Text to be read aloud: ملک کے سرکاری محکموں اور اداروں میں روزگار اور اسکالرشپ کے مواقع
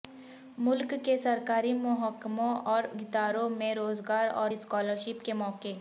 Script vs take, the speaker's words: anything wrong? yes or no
no